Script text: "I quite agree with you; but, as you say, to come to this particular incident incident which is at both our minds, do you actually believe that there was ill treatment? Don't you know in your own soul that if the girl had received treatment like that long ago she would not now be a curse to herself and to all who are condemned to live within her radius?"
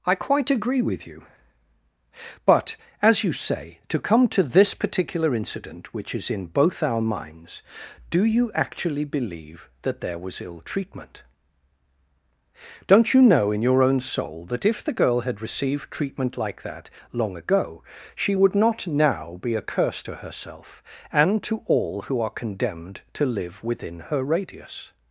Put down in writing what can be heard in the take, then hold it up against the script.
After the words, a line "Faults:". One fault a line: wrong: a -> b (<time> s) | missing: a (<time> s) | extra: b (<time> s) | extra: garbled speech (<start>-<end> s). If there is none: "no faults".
"I quite agree with you; but, as you say, to come to this particular incident which is in both our minds, do you actually believe that there was ill treatment? Don't you know in your own soul that if the girl had received treatment like that long ago she would not now be a curse to herself and to all who are condemned to live within her radius?"
Faults:
missing: incident (5.9 s)
wrong: at -> in (6.3 s)